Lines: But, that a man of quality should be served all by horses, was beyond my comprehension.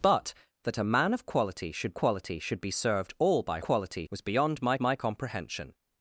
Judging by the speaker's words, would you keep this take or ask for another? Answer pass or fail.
fail